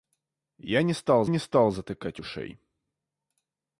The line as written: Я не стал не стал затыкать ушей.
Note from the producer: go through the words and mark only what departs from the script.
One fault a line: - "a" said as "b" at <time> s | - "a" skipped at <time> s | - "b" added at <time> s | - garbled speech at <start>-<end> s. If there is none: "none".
none